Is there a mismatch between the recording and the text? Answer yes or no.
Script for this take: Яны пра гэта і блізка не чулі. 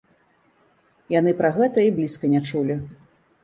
no